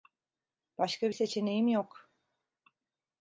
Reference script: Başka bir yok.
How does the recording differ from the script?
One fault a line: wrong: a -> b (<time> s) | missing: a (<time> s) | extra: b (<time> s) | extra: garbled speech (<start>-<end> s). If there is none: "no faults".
extra: seçeneğim (1.1 s)